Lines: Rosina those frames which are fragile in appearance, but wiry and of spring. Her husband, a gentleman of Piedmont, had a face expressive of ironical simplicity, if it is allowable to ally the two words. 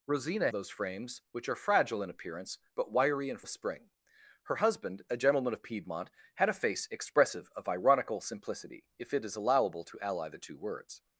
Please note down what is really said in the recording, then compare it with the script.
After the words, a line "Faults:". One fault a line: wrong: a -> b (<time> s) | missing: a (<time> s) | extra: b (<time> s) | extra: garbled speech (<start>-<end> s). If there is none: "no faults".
Rosina those frames which are fragile in appearance, but wiry and of spring. Her husband, a gentleman of Piedmont, had a face expressive of ironical simplicity, if it is allowable to ally the two words.
Faults:
no faults